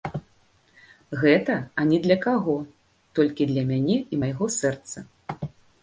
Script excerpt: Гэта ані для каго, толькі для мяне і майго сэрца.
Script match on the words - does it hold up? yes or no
yes